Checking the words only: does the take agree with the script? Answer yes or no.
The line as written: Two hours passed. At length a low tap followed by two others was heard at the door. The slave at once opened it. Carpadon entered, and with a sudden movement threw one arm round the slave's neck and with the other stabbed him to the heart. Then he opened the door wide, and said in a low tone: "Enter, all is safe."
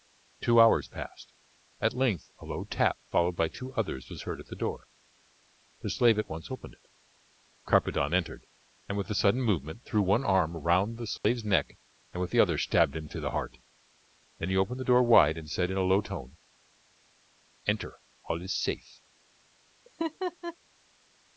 yes